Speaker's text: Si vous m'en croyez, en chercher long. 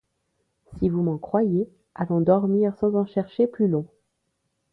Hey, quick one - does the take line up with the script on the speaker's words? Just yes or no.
no